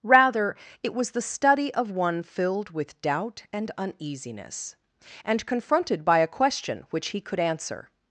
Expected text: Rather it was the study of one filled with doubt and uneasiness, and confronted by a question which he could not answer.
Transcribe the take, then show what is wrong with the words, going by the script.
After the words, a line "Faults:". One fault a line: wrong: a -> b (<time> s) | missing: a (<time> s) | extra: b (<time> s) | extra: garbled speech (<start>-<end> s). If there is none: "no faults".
Rather it was the study of one filled with doubt and uneasiness, and confronted by a question which he could answer.
Faults:
missing: not (7.4 s)